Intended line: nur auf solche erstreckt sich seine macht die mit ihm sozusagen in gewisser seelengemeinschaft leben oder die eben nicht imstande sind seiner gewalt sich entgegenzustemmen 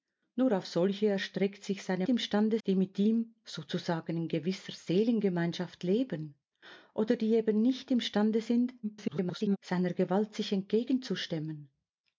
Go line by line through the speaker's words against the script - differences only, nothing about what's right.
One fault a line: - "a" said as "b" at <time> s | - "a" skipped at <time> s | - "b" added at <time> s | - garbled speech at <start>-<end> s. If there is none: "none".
- "macht" said as "imstande" at 2.1 s
- garbled speech at 8.8-9.6 s